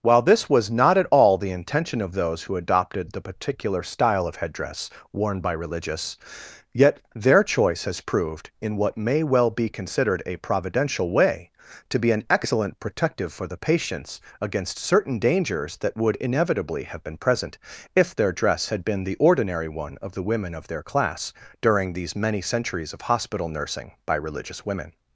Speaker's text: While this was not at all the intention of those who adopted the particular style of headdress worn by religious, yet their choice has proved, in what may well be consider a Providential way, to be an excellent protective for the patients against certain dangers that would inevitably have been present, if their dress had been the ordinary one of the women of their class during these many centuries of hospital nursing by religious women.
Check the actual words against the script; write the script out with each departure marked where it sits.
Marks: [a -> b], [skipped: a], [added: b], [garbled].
While this was not at all the intention of those who adopted the particular style of headdress worn by religious, yet their choice has proved, in what may well be [consider -> considered] a Providential way, to be an excellent protective for the patients against certain dangers that would inevitably have been present, if their dress had been the ordinary one of the women of their class during these many centuries of hospital nursing by religious women.